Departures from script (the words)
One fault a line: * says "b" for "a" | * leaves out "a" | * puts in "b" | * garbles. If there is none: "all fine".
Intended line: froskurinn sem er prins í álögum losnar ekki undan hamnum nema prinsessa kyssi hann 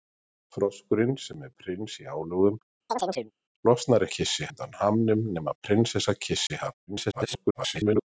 * says "kyssi" for "ekki"
* garbles